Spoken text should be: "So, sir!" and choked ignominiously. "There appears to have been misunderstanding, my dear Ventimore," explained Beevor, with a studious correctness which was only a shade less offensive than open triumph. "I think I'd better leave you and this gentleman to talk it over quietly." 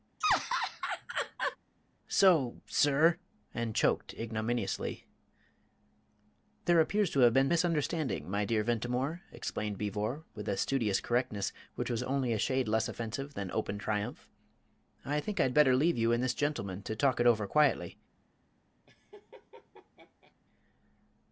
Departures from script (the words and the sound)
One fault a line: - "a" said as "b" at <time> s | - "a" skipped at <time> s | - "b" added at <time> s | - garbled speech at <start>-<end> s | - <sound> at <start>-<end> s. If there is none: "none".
- laugh at 0.2-1.6 s
- laugh at 18.9-20.3 s